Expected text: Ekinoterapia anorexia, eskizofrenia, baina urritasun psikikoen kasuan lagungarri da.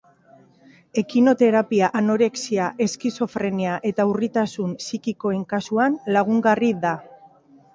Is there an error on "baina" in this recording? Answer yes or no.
yes